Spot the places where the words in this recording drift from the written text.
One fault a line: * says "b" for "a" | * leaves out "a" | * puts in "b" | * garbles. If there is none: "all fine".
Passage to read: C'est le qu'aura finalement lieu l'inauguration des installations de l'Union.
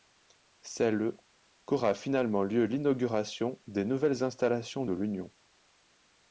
* puts in "nouvelles"